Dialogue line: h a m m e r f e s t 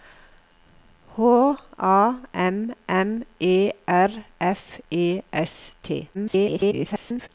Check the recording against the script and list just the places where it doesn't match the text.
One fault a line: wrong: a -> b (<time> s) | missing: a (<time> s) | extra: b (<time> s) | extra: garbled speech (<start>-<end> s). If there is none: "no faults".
extra: garbled speech (6.1-7.3 s)